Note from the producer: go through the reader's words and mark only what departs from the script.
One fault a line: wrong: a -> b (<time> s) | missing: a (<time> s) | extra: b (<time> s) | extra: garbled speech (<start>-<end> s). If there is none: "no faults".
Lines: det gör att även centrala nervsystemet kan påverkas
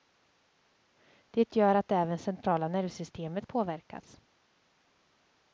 missing: kan (3.5 s)